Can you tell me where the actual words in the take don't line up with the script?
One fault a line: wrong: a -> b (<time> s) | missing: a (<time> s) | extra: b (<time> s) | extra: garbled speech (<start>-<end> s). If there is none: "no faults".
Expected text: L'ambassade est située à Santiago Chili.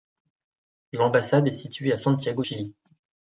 no faults